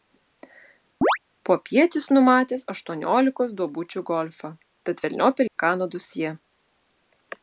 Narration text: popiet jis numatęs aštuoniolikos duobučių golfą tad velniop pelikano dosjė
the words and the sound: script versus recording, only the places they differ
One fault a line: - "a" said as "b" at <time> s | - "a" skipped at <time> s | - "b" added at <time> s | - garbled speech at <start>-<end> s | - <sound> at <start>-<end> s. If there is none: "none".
- chirp at 1.0-1.2 s
- dropout at 5.5-5.6 s